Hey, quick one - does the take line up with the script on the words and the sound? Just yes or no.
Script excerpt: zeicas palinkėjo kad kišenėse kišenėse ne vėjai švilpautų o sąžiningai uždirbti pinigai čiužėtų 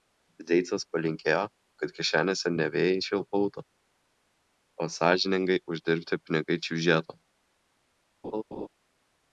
no